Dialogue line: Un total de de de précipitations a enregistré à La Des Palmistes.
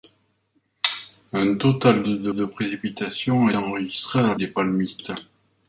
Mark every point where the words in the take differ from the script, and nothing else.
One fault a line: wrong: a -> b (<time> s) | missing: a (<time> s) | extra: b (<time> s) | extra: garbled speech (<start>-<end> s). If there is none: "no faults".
no faults